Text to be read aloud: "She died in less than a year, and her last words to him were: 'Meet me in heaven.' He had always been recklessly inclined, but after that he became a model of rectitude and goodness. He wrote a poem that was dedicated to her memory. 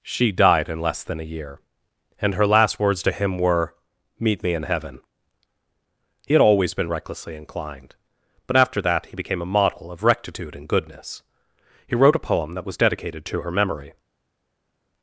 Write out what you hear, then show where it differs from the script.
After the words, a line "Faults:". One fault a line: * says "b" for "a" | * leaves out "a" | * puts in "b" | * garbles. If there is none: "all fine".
"She died in less than a year, and her last words to him were: 'Meet me in heaven.' He had always been recklessly inclined, but after that he became a model of rectitude and goodness. He wrote a poem that was dedicated to her memory.
Faults:
all fine